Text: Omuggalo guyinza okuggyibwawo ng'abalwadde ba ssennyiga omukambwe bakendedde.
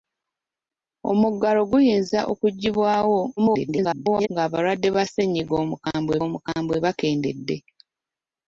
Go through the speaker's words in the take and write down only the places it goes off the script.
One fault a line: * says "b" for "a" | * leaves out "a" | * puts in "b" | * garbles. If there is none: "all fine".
* garbles
* puts in "omukambwe"